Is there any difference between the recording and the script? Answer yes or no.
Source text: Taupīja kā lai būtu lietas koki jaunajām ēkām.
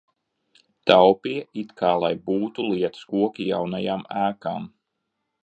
yes